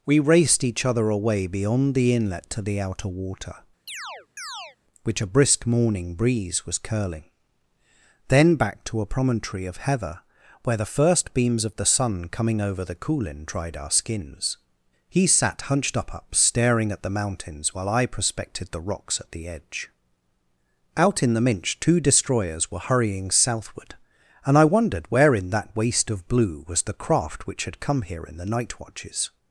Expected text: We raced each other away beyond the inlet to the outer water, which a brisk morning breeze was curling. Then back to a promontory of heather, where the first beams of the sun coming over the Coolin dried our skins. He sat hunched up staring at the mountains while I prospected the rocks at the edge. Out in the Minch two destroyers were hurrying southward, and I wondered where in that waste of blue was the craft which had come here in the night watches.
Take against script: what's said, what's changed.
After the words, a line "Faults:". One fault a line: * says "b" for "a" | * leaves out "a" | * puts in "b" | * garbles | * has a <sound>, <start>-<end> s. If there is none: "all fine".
We raced each other away beyond the inlet to the outer water, which a brisk morning breeze was curling. Then back to a promontory of heather, where the first beams of the sun coming over the Coolin dried our skins. He sat hunched up up staring at the mountains while I prospected the rocks at the edge. Out in the Minch two destroyers were hurrying southward, and I wondered where in that waste of blue was the craft which had come here in the night watches.
Faults:
* has a chirp, 3.9-4.8 s
* puts in "up"